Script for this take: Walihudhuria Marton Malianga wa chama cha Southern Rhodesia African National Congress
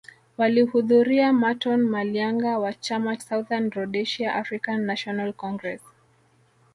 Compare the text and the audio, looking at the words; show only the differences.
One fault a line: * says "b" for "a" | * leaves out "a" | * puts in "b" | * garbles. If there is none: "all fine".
* leaves out "cha"